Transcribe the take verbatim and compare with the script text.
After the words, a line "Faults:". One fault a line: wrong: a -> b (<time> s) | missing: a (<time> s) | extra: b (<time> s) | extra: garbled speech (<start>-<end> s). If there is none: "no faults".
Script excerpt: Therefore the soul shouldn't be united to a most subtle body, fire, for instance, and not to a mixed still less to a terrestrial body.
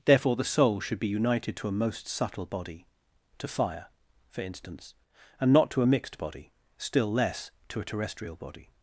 Therefore the soul should be united to a most subtle body, to fire, for instance, and not to a mixed body, still less to a terrestrial body.
Faults:
wrong: shouldn't -> should (0.8 s)
extra: to (3.4 s)
extra: body (6.2 s)